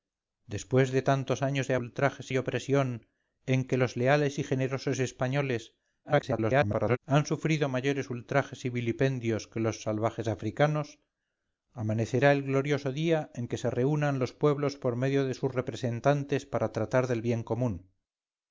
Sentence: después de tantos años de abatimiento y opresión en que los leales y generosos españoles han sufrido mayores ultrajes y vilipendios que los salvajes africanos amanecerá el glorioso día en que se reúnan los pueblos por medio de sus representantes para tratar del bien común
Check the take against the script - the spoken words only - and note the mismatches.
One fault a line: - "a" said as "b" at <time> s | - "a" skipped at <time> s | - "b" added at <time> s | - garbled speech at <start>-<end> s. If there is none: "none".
- "abatimiento" said as "ultrajes" at 1.8 s
- garbled speech at 6.0-7.0 s